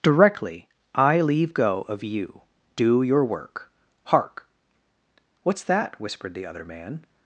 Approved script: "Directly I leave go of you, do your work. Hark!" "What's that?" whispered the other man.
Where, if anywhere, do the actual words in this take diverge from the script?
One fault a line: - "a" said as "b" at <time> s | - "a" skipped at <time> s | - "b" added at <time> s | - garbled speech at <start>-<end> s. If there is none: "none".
none